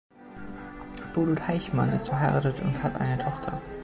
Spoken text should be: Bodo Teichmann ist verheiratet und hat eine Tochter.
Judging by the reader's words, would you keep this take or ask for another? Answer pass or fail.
pass